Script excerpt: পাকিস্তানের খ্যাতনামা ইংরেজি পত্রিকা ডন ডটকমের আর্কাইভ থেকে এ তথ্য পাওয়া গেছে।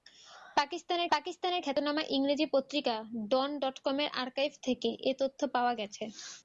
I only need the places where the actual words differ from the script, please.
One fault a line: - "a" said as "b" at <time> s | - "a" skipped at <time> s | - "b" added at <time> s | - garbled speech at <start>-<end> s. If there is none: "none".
- "পাকিস্তানের" added at 1.1 s